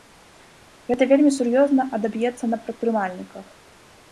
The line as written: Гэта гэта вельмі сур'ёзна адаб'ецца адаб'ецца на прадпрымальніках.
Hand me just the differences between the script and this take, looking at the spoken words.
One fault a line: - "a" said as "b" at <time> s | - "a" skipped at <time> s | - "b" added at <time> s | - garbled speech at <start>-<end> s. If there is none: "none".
- "гэта" skipped at 1.0 s
- "адаб'ецца" skipped at 2.5 s